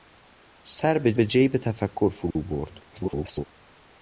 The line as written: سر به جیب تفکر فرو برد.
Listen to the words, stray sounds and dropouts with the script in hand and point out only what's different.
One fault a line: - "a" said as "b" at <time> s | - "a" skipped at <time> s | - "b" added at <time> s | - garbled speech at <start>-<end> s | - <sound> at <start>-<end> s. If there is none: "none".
- "به" added at 1.1 s
- dropout at 2.3-2.4 s
- garbled speech at 2.9-3.4 s